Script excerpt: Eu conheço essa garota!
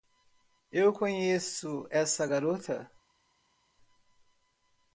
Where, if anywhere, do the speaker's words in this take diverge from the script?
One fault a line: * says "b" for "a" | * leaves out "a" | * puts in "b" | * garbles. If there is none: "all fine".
all fine